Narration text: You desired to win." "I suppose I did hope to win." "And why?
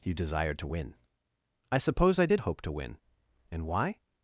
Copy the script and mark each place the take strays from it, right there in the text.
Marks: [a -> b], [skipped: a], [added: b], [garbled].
You desired to win." "I suppose I did hope to win." "And why?